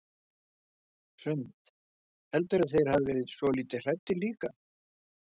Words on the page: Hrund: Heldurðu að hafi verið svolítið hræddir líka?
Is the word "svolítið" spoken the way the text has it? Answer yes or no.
yes